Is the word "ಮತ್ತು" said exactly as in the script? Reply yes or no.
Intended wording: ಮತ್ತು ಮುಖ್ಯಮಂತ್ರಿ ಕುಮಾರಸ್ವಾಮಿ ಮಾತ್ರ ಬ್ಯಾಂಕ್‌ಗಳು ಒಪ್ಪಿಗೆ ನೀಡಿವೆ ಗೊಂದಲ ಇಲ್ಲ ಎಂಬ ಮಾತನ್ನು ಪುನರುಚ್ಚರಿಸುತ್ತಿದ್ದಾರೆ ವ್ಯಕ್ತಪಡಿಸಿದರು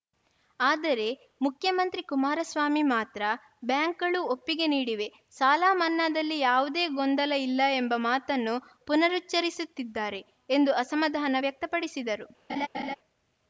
no